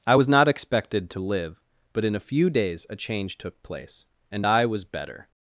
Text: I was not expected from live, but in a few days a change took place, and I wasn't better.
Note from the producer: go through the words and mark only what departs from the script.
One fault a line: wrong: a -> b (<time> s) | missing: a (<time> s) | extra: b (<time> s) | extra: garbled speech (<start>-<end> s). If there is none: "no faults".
wrong: from -> to (1.1 s)
wrong: wasn't -> was (4.6 s)